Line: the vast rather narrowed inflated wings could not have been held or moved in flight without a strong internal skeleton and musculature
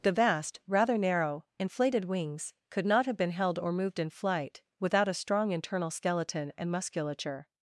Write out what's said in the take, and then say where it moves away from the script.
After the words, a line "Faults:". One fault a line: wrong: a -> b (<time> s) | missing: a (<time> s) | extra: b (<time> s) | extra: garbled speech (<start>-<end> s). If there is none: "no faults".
the vast rather narrow inflated wings could not have been held or moved in flight without a strong internal skeleton and musculature
Faults:
wrong: narrowed -> narrow (1.0 s)